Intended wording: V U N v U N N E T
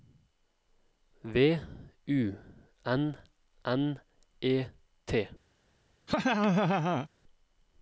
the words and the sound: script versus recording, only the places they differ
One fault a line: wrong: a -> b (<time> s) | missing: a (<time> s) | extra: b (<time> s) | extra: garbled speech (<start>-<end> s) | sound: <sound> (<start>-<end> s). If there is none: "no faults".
missing: v U N (3.2 s)
sound: laugh (6.1-7.1 s)